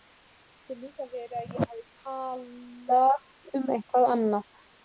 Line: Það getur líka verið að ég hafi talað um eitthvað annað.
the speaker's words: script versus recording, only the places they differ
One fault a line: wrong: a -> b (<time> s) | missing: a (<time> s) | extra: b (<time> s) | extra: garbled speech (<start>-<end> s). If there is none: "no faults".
no faults